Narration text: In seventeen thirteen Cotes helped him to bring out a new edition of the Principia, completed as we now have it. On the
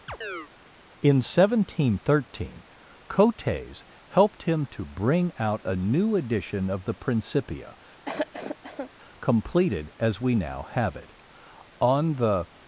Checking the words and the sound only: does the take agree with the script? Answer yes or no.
no